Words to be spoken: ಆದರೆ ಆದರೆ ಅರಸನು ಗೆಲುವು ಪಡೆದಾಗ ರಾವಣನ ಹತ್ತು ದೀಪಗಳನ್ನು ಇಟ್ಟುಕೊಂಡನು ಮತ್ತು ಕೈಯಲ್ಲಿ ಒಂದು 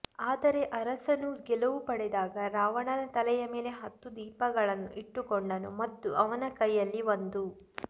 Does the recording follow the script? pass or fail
fail